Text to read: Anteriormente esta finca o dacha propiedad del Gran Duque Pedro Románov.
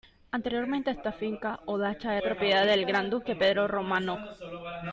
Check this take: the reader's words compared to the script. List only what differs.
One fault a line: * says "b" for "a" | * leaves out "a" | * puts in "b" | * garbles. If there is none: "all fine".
all fine